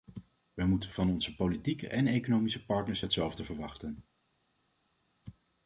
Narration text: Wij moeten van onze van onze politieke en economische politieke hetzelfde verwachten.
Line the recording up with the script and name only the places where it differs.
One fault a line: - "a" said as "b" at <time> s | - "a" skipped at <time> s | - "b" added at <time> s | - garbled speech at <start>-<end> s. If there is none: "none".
- "van onze" skipped at 1.3 s
- "politieke" said as "partners" at 2.6 s